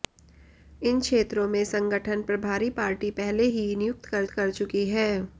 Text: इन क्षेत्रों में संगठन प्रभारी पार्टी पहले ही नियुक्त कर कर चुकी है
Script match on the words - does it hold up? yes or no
yes